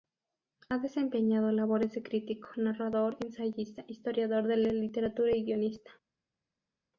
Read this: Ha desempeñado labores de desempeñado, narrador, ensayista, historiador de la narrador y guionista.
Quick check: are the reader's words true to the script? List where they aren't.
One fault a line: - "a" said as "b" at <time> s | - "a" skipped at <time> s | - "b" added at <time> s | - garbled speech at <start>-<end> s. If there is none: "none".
- "desempeñado" said as "crítico" at 2.0 s
- "narrador" said as "literatura" at 4.7 s